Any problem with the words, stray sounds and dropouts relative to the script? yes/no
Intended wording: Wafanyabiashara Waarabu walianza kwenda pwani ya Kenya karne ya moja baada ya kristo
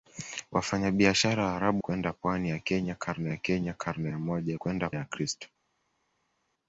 yes